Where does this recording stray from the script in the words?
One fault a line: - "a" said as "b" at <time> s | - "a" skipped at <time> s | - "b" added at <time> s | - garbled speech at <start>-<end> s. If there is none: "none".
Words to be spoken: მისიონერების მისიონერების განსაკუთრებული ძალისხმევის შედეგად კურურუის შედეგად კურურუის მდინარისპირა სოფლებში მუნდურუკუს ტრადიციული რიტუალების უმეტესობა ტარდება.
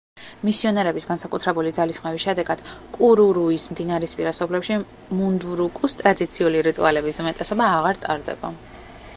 - "მისიონერების" skipped at 1.0 s
- "შედეგად კურურუის" skipped at 3.7 s
- "აღარ" added at 7.8 s